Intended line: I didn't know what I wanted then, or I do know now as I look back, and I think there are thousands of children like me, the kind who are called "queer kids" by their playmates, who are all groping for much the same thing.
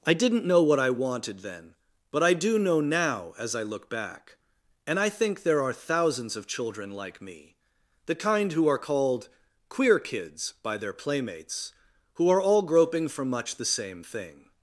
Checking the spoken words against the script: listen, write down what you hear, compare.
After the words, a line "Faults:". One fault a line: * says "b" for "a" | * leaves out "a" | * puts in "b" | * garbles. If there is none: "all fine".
I didn't know what I wanted then, but I do know now as I look back, and I think there are thousands of children like me, the kind who are called "queer kids" by their playmates, who are all groping for much the same thing.
Faults:
* says "but" for "or"